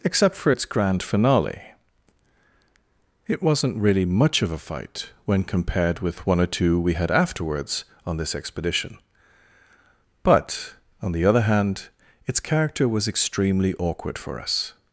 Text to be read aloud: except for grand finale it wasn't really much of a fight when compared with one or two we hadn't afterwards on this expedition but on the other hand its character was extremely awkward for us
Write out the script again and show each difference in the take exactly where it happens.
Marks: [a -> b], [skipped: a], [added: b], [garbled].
except for [added: its] grand finale it wasn't really much of a fight when compared with one or two we [hadn't -> had] afterwards on this expedition but on the other hand its character was extremely awkward for us